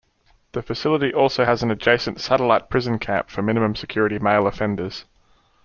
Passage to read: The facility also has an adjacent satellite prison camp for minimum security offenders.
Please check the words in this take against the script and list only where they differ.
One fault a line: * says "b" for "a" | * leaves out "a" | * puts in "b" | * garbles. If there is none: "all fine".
* puts in "male"